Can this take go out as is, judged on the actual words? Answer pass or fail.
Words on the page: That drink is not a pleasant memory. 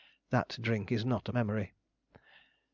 fail